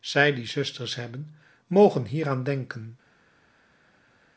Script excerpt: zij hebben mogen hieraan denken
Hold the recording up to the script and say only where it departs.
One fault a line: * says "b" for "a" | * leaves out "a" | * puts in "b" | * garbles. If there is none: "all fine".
* puts in "die zusters"